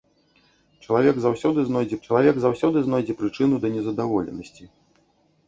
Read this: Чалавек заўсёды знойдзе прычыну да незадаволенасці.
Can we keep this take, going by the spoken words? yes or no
no